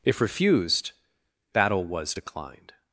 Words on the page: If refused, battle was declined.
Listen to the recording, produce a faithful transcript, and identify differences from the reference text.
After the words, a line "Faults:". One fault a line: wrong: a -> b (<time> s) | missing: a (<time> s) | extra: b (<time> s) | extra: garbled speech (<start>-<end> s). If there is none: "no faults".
If refused, battle was declined.
Faults:
no faults